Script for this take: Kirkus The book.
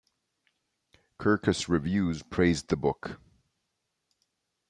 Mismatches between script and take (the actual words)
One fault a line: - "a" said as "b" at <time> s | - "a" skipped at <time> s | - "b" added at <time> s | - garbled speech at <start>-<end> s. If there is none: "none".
- "Reviews praised" added at 1.7 s